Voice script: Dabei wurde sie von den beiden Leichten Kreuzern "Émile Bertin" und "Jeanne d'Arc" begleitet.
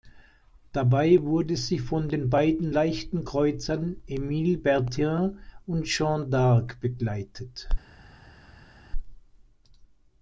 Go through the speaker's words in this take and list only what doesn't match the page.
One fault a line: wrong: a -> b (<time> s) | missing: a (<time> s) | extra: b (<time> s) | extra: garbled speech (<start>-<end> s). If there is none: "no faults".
no faults